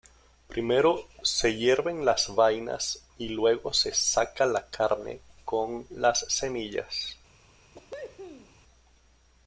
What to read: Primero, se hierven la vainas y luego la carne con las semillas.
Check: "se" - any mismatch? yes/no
no